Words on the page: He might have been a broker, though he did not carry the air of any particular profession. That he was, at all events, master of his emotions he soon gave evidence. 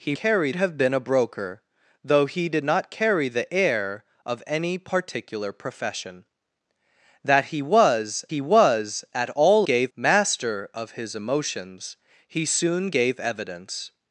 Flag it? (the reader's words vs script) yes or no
yes